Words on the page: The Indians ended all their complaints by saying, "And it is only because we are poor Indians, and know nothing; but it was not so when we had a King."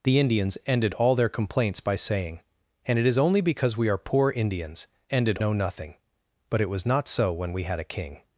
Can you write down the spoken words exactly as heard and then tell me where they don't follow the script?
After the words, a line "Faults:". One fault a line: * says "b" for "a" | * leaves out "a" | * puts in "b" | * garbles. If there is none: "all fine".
The Indians ended all their complaints by saying, "And it is only because we are poor Indians, ended know nothing; but it was not so when we had a King."
Faults:
* says "ended" for "and"